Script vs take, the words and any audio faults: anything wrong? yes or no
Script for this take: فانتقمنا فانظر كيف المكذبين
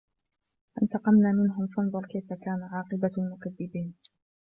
yes